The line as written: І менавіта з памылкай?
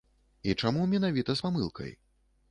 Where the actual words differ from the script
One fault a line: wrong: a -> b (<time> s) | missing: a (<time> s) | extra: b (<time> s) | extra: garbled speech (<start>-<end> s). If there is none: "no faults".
extra: чаму (0.6 s)